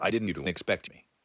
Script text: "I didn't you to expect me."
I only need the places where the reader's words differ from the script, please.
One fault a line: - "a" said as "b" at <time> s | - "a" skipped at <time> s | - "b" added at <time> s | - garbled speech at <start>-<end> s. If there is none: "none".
none